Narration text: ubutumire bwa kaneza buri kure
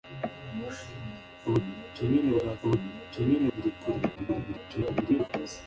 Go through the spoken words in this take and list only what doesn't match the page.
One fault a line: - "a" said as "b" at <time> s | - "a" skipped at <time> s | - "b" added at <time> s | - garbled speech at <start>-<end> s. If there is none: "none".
- "kaneza" said as "ubutumire" at 2.6 s
- garbled speech at 4.2-5.3 s